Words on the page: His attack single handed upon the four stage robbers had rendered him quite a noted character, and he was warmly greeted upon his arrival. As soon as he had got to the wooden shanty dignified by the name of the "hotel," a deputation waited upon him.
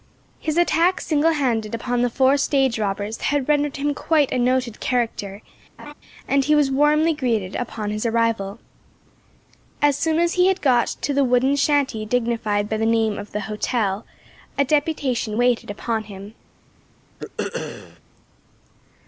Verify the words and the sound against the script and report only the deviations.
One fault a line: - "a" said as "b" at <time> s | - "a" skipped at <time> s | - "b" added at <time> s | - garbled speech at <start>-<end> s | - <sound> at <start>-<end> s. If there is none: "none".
- laugh at 5.8-5.9 s
- throat clearing at 17.2-18.0 s